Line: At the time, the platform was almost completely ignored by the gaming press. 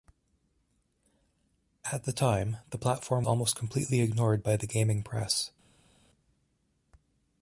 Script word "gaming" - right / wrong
right